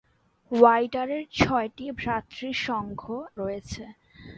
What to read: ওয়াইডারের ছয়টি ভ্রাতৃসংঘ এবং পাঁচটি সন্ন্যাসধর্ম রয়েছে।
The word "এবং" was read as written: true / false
false